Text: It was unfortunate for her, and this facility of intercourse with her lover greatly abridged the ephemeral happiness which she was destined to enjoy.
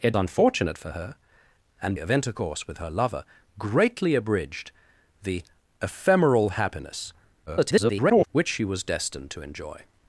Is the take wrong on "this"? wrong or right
wrong